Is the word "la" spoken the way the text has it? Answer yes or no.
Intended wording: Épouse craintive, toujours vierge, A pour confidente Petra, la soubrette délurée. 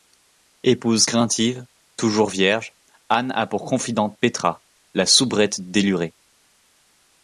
yes